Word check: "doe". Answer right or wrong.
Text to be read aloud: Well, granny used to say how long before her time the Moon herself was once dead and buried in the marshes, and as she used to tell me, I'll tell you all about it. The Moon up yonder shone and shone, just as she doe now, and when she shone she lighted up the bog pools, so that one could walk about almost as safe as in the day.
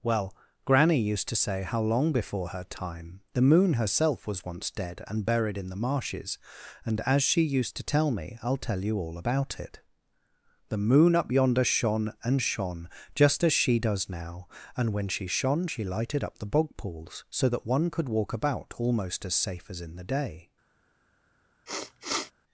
wrong